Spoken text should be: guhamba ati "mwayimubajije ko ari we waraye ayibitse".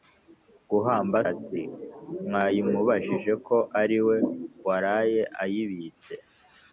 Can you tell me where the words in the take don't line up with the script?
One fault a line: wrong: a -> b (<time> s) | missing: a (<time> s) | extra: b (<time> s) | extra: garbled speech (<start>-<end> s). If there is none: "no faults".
no faults